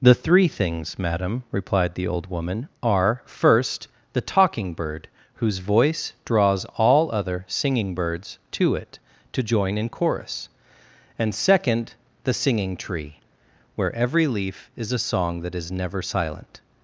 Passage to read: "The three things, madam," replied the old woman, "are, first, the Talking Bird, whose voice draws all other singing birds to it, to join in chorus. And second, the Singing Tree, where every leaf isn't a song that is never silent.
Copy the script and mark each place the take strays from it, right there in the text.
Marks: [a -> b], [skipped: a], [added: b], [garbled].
"The three things, madam," replied the old woman, "are, first, the Talking Bird, whose voice draws all other singing birds to it, to join in chorus. And second, the Singing Tree, where every leaf [isn't -> is] a song that is never silent.